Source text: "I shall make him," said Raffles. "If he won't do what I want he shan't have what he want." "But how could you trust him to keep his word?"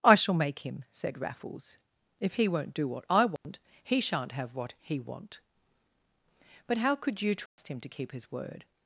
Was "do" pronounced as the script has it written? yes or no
yes